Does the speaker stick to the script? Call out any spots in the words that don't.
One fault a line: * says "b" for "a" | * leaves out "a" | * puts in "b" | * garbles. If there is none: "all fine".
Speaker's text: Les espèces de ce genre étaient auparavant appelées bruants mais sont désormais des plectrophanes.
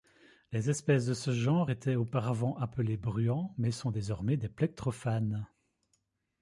all fine